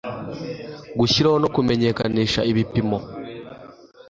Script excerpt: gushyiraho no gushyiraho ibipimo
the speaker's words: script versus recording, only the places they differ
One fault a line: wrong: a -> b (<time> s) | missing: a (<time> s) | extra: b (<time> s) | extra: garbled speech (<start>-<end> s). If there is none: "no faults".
wrong: gushyiraho -> kumenyekanisha (1.5 s)